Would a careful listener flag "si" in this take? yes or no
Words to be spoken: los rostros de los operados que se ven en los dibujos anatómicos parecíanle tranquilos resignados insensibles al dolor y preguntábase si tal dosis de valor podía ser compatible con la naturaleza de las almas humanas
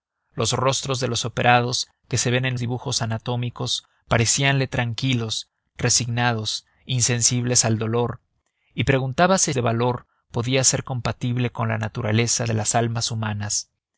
yes